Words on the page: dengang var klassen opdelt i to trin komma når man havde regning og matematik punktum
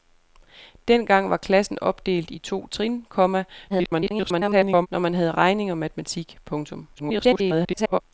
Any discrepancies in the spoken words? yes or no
yes